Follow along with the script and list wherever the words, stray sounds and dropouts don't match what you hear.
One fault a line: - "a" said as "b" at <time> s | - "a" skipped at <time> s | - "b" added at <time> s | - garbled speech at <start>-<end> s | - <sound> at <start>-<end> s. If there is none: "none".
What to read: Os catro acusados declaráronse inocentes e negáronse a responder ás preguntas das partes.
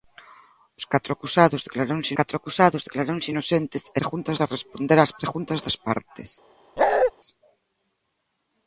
- "catro acusados declaráronse" added at 2.2 s
- "negáronse" said as "preguntas" at 4.0 s
- bark at 6.8-7.1 s